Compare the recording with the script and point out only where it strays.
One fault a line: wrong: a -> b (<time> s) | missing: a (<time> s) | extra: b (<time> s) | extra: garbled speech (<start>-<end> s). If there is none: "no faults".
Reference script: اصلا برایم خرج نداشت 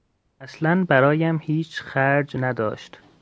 extra: هیچ (1.4 s)